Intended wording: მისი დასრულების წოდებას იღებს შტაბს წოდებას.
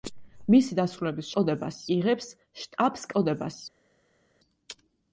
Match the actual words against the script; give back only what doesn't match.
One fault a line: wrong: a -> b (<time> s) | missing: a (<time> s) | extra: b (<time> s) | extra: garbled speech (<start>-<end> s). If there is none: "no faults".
no faults